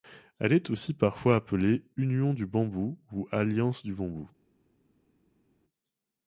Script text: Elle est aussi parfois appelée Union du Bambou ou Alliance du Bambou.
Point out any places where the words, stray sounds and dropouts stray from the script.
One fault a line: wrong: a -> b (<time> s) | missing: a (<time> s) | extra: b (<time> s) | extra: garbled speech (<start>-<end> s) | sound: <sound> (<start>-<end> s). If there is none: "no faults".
no faults